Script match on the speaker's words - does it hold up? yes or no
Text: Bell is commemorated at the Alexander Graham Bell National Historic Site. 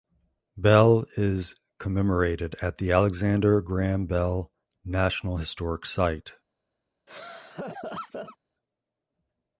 yes